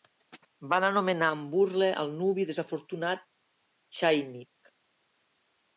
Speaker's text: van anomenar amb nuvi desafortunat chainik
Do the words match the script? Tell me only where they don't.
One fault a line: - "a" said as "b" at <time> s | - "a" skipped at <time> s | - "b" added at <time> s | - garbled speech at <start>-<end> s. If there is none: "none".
- "burla al" added at 1.6 s